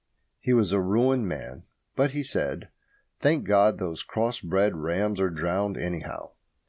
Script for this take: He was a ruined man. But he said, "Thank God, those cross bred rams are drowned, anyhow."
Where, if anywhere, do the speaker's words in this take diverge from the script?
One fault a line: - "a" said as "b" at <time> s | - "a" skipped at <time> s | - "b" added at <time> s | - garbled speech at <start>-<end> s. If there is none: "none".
none